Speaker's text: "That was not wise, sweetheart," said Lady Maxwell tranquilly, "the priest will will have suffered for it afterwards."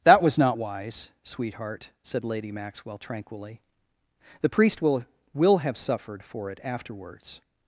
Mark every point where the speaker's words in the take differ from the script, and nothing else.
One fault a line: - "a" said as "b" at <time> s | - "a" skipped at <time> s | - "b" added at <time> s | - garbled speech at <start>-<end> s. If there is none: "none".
none